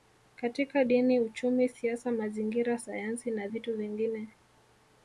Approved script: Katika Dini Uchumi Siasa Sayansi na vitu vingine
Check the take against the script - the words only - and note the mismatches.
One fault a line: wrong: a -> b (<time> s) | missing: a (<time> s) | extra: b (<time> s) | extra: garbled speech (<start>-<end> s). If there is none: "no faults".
extra: Mazingira (2.1 s)